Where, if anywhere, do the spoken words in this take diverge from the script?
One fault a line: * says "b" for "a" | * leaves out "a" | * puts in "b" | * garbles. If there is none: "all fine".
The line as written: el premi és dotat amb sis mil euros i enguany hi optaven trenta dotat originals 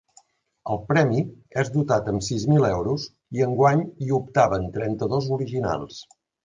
* says "dos" for "dotat"